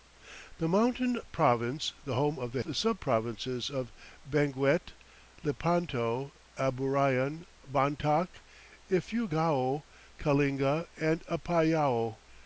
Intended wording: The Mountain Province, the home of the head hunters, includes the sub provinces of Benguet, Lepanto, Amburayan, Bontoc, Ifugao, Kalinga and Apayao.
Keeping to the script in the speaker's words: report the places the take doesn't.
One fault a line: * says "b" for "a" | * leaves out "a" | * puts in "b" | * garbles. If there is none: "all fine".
* leaves out "head hunters includes"